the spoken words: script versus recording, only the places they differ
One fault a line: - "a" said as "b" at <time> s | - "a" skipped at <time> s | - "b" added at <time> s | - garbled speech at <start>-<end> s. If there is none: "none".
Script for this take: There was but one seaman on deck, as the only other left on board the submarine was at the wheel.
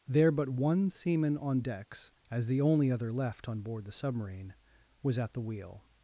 - "was" skipped at 0.3 s
- "deck" said as "decks" at 1.6 s